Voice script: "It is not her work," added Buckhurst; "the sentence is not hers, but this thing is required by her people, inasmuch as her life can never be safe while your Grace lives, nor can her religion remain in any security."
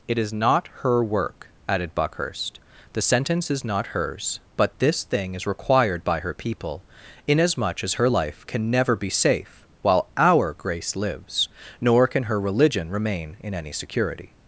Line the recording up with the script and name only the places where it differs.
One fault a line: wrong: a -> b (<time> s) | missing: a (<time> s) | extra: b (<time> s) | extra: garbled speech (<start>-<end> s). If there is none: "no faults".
wrong: your -> our (10.2 s)